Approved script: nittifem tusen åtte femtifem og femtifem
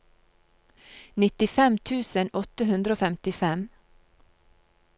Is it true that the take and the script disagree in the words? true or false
true